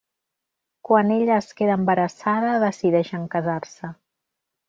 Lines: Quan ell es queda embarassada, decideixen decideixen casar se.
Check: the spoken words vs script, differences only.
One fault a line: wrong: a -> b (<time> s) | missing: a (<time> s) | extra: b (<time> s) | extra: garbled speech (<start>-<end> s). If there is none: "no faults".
wrong: ell -> ella (1.1 s)
missing: decideixen (3.3 s)